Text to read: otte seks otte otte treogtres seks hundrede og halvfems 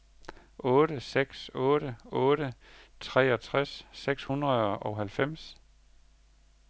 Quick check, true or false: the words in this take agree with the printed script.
true